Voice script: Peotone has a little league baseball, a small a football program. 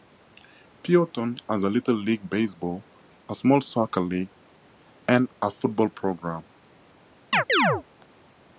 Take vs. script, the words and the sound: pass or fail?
fail